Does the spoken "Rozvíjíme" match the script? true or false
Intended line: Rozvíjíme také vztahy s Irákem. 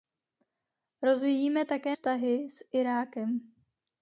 true